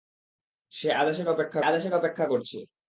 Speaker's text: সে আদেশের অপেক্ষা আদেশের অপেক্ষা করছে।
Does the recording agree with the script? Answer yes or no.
yes